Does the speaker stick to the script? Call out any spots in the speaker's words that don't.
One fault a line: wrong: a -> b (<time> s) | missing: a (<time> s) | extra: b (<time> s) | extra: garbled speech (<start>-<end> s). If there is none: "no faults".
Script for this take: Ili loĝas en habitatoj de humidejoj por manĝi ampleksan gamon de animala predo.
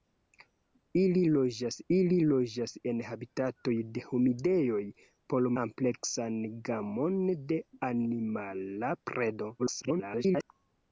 extra: ili loĝas (2.0 s)
missing: manĝi (5.5 s)
extra: garbled speech (9.6-10.4 s)